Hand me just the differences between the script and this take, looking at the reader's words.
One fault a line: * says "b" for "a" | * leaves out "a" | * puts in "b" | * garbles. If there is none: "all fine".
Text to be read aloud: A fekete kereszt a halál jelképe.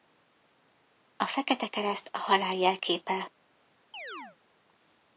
all fine